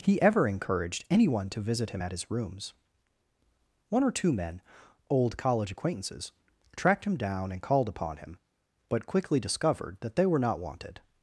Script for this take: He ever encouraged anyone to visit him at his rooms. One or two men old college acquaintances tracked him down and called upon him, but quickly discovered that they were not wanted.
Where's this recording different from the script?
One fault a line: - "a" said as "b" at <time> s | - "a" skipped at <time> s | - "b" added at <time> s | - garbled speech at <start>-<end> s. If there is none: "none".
none